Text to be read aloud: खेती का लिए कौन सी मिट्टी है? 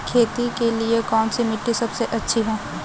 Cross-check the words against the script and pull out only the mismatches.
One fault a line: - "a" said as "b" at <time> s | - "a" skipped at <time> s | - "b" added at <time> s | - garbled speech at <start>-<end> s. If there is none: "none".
- "का" said as "के" at 0.6 s
- "सबसे अच्छी" added at 1.7 s